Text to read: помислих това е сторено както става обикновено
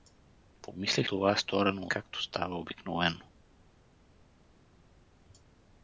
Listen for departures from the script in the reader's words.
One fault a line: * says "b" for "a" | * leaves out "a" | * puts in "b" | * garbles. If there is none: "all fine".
all fine